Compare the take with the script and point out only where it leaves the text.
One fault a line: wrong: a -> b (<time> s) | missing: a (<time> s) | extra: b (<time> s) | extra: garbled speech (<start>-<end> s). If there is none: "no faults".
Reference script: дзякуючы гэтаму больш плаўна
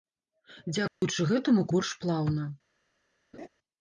no faults